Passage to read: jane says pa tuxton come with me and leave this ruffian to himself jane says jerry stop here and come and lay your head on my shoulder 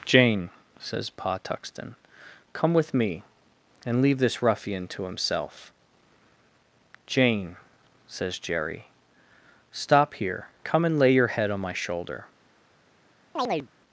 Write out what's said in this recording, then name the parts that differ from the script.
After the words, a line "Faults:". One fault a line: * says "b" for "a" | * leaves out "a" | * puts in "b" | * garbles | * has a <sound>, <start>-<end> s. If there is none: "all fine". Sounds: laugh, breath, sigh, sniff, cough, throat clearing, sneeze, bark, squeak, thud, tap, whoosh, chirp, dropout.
jane says pa tuxton come with me and leave this ruffian to himself jane says jerry stop here come and lay your head on my shoulder
Faults:
* leaves out "and"
* has a chirp, 13.4-13.7 s